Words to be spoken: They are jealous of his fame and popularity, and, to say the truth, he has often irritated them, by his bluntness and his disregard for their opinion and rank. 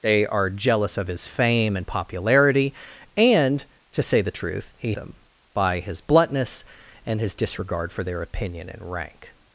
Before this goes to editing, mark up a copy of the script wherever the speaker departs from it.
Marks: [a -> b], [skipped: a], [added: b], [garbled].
They are jealous of his fame and popularity, and, to say the truth, he [skipped: has often irritated] them, by his bluntness and his disregard for their opinion and rank.